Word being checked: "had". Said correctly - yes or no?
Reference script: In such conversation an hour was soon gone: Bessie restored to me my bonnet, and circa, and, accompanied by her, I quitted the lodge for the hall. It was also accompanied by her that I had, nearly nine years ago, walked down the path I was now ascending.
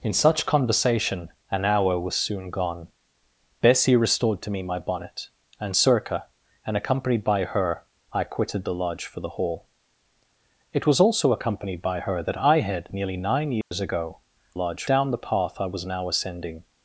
yes